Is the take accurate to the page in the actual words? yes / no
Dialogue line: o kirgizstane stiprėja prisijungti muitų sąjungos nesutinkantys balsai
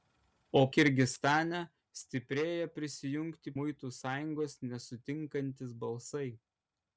yes